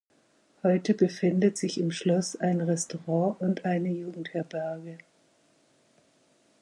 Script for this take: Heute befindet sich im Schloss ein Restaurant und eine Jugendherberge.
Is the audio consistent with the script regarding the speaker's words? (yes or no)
yes